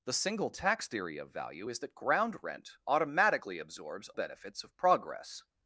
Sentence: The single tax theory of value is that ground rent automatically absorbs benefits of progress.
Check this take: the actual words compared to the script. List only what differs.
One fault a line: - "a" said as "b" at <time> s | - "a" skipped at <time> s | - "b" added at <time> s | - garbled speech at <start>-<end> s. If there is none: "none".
none